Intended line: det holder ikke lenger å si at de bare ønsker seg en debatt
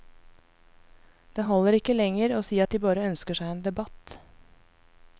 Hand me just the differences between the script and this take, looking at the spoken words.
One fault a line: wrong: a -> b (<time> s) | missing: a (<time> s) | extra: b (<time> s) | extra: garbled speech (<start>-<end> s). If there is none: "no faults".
no faults